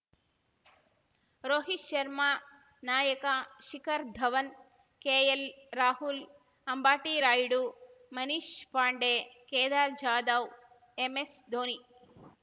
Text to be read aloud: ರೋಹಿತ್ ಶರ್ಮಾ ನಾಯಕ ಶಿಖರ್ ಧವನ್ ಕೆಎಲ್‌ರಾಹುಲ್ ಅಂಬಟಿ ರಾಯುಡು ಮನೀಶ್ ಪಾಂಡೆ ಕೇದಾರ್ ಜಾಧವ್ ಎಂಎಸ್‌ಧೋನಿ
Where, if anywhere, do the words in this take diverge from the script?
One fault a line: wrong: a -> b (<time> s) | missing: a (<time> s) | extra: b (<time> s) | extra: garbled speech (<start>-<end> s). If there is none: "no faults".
no faults